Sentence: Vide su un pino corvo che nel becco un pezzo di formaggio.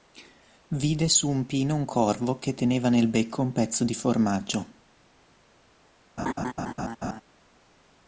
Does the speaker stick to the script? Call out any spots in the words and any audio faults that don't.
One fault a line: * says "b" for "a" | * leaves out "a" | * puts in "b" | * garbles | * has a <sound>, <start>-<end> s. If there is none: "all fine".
* puts in "un"
* puts in "teneva"
* has a laugh, 6.2-7.2 s